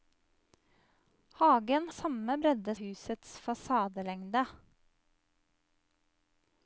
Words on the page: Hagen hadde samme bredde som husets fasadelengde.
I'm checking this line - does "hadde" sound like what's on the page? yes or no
no